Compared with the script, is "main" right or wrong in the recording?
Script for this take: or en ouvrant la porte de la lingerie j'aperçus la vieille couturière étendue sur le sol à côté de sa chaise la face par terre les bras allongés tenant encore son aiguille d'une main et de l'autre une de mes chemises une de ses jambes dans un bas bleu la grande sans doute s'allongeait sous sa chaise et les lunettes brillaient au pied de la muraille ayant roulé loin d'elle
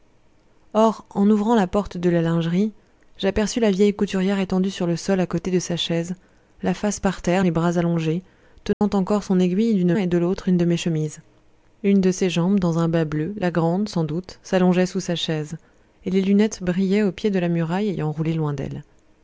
wrong